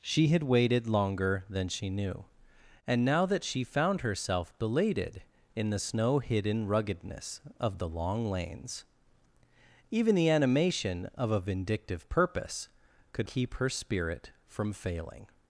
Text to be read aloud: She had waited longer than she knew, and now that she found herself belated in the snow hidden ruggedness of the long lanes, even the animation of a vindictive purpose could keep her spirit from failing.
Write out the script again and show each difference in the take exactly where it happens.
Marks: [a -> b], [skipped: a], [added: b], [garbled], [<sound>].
She had waited longer than she knew, and now that she found herself belated in the snow hidden ruggedness of the long lanes, even the animation of a vindictive purpose could keep her spirit from failing.